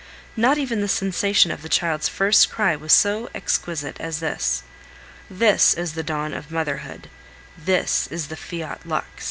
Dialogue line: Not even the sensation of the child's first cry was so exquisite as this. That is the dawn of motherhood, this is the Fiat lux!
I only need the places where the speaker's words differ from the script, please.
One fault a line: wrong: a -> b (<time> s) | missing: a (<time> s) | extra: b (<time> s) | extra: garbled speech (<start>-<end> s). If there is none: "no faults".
wrong: That -> This (5.3 s)